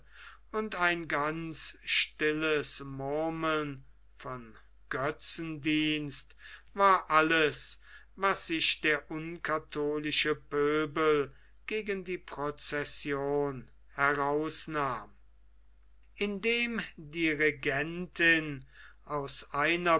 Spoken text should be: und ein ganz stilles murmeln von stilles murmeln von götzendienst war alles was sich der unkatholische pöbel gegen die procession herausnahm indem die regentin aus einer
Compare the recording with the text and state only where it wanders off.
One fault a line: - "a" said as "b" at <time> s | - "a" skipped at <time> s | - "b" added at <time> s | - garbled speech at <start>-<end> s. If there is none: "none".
- "stilles murmeln von" skipped at 4.6 s